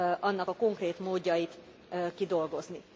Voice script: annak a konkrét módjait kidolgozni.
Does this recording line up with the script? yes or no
yes